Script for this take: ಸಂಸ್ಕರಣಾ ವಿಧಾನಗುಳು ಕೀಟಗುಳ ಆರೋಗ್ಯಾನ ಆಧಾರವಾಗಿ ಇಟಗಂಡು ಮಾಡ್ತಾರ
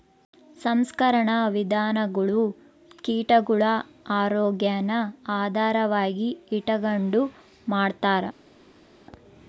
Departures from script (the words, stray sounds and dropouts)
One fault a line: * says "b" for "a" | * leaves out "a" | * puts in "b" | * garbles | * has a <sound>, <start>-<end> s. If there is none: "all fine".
all fine